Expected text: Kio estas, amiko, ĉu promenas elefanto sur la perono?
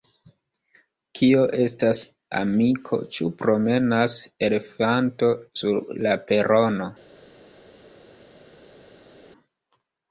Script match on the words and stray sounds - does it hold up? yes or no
yes